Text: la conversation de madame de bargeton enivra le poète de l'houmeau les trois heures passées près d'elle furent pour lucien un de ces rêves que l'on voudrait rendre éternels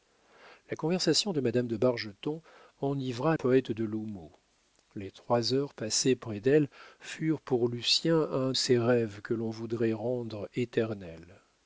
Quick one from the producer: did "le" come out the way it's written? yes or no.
no